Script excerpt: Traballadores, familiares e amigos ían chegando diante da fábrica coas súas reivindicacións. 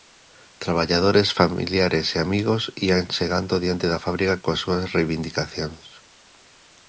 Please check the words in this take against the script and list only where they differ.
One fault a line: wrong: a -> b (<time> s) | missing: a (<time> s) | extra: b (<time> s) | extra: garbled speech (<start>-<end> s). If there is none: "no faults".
no faults